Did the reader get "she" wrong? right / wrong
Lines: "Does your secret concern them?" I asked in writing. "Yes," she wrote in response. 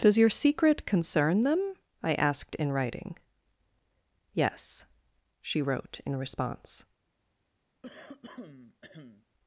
right